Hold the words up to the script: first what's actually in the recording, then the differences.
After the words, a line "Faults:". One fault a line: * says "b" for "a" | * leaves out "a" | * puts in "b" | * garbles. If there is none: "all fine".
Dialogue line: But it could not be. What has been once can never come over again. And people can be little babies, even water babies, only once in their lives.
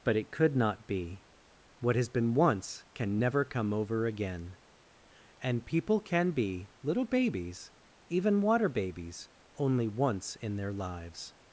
But it could not be. What has been once can never come over again. And people can be little babies, even water babies, only once in their lives.
Faults:
all fine